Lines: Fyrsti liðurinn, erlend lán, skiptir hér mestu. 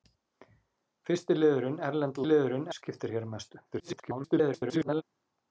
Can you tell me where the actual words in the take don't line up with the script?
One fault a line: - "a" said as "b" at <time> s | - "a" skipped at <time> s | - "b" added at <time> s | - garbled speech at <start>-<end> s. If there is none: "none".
- "lán" said as "liðurinn" at 2.3 s
- garbled speech at 3.7-5.0 s